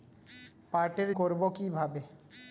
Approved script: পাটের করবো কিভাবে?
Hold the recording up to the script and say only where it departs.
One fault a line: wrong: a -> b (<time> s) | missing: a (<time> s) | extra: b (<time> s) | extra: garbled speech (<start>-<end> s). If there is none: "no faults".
no faults